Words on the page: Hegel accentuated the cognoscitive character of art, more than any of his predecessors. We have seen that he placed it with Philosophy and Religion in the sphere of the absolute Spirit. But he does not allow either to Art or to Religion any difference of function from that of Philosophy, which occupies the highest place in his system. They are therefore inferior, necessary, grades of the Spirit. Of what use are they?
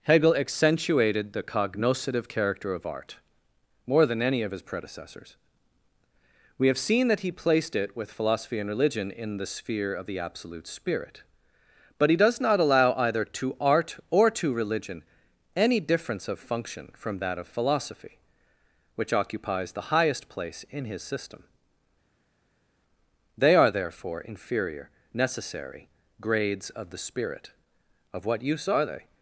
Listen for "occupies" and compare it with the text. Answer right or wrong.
right